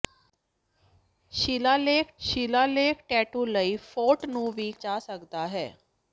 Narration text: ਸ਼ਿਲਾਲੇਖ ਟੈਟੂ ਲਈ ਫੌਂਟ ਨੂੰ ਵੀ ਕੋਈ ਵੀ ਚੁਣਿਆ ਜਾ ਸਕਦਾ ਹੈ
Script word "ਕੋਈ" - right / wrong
wrong